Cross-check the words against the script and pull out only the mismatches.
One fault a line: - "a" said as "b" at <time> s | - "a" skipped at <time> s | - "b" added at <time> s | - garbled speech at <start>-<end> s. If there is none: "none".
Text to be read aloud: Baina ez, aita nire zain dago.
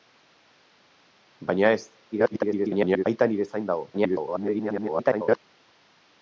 - garbled speech at 2.1-3.0 s
- garbled speech at 3.9-5.4 s